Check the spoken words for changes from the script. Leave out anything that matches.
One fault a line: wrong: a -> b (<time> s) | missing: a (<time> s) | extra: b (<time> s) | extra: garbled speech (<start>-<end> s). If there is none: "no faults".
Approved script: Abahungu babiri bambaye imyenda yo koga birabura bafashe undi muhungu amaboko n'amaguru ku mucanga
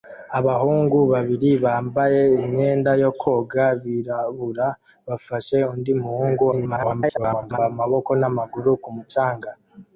extra: garbled speech (6.5-7.6 s)